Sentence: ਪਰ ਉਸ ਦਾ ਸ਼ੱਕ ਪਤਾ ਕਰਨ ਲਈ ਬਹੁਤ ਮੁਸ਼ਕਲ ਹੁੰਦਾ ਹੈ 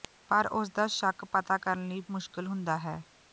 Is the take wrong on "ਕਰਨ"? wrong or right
right